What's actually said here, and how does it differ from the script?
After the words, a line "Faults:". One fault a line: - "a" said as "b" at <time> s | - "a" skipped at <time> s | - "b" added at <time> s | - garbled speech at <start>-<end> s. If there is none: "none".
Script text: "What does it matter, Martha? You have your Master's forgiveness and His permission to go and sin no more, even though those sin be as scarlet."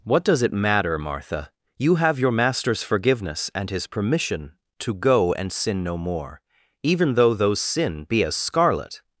"What does it matter, Martha? You have your Master's forgiveness and His permission to go and sin no more, even though those sin be as scarlet."
Faults:
none